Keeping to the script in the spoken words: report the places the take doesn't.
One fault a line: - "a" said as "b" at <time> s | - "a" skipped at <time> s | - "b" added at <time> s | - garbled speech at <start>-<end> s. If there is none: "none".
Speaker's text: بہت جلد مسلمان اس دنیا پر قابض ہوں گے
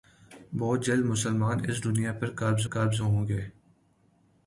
- "قابض" added at 2.7 s